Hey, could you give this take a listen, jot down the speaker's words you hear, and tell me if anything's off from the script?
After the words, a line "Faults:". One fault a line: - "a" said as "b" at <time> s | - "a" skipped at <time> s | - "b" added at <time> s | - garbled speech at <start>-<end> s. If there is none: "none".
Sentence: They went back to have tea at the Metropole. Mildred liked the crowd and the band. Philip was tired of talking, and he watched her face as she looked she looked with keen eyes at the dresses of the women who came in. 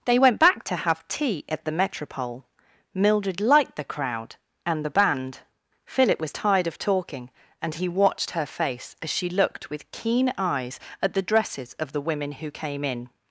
They went back to have tea at the Metropole. Mildred liked the crowd and the band. Philip was tired of talking, and he watched her face as she looked with keen eyes at the dresses of the women who came in.
Faults:
- "she looked" skipped at 9.7 s